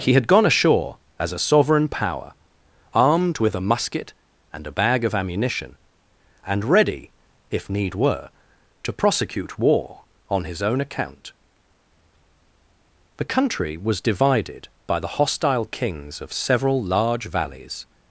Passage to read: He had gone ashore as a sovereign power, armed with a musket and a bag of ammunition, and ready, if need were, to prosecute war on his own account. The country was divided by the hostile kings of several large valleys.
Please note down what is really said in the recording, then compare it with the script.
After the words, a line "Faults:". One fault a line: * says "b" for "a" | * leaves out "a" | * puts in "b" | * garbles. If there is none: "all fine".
He had gone ashore as a sovereign power, armed with a musket and a bag of ammunition, and ready, if need were, to prosecute war on his own account. The country was divided by the hostile kings of several large valleys.
Faults:
all fine